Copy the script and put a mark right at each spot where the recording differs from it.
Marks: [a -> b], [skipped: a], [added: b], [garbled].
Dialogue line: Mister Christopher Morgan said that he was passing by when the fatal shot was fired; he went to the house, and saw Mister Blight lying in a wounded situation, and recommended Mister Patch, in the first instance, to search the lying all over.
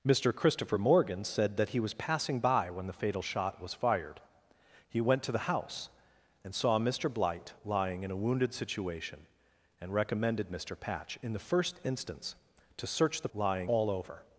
Mister Christopher Morgan said that he was passing by when the fatal shot was fired; he went to the house, and saw Mister Blight lying in a wounded situation, and recommended Mister Patch, in the first instance, to search the lying all over.